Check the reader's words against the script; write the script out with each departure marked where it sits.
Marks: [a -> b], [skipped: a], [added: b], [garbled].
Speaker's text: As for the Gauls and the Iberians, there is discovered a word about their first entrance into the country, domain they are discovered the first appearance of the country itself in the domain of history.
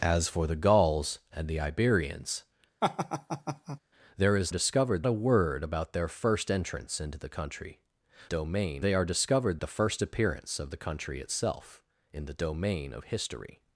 As for the Gauls and the Iberians, there is discovered a word about their first entrance into the country, domain they are discovered the first appearance of the country itself in the domain of history.